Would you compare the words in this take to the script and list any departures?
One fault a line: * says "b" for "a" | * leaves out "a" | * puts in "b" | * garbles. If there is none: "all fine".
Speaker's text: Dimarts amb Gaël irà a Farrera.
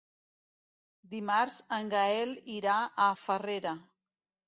* says "en" for "amb"